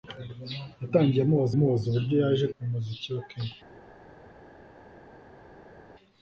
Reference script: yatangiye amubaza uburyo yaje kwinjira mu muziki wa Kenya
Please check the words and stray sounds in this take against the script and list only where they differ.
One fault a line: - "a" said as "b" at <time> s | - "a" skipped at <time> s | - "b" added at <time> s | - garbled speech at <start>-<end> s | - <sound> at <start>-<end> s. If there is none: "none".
- "amubaza" added at 1.5 s
- "kwinjira" skipped at 2.5 s